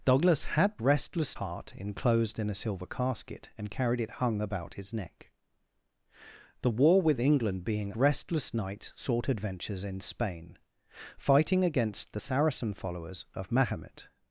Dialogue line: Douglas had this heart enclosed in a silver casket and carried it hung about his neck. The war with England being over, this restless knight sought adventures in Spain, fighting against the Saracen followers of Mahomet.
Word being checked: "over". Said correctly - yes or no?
no